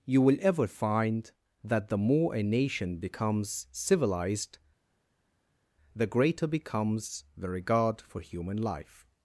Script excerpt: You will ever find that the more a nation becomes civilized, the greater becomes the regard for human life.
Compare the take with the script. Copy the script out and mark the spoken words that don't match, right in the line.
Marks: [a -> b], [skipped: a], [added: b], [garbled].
You will ever find that the more a nation becomes civilized, the greater becomes the regard for human life.